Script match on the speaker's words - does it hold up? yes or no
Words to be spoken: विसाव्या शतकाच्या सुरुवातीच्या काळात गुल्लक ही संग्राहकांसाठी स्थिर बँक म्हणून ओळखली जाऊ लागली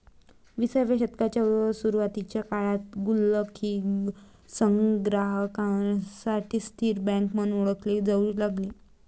yes